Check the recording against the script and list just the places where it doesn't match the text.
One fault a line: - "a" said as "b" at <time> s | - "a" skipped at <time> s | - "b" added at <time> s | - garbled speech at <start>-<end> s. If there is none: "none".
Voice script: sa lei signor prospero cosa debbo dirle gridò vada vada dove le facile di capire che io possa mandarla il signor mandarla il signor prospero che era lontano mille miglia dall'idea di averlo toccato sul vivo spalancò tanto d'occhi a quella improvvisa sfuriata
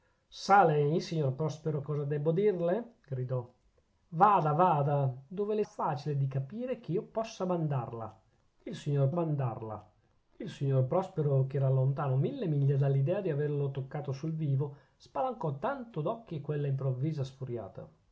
none